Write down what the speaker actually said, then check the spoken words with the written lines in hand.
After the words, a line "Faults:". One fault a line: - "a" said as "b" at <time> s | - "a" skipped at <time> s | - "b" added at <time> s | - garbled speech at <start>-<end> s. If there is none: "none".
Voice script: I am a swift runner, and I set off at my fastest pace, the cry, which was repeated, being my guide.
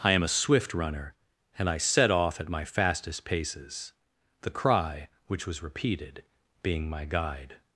I am a swift runner, and I set off at my fastest paces, the cry, which was repeated, being my guide.
Faults:
- "pace" said as "paces" at 3.2 s